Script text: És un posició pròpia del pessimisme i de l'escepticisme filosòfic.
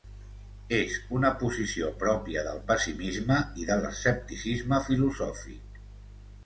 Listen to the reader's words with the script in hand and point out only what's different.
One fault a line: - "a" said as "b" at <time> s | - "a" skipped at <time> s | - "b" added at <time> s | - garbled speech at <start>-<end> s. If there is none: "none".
- "un" said as "una" at 1.2 s